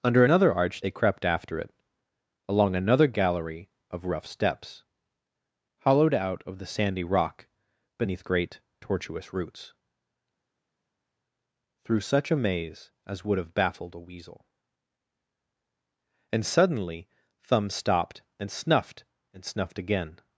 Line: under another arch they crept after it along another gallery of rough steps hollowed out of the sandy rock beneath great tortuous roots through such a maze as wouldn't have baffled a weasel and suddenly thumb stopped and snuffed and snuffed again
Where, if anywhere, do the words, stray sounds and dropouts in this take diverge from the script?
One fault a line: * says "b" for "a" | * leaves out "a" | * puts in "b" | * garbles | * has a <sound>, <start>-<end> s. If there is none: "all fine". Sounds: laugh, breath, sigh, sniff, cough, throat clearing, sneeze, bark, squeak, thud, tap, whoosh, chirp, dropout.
* says "would" for "wouldn't"